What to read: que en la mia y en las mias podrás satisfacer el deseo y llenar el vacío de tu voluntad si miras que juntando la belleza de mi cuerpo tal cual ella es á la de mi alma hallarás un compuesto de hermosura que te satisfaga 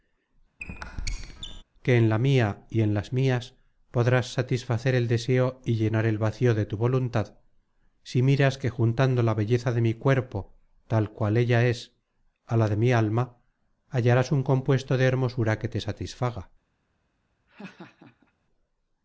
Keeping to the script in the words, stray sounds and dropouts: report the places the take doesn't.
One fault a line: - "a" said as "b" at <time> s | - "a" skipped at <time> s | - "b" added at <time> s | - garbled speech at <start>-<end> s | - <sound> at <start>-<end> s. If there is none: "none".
- squeak at 0.6-1.6 s
- laugh at 17.5-18.3 s